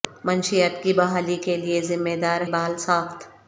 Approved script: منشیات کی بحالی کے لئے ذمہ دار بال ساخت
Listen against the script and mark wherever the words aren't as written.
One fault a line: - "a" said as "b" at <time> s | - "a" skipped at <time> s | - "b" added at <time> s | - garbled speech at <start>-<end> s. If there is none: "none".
none